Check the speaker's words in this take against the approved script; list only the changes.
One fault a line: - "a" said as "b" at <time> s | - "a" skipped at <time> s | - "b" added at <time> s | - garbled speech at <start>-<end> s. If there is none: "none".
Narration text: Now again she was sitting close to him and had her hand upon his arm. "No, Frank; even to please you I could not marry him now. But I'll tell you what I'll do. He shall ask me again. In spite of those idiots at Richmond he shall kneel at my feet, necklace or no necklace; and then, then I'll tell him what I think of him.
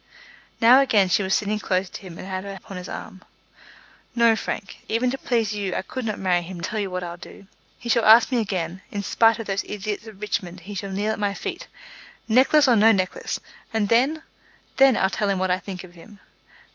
- "hand" skipped at 2.5 s
- "now But I'll" skipped at 6.6 s